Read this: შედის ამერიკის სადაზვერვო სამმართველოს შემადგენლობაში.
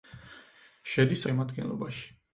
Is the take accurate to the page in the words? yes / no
no